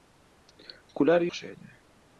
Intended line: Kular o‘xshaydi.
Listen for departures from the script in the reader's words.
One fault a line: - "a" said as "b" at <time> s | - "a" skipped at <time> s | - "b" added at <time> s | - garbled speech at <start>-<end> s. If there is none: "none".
none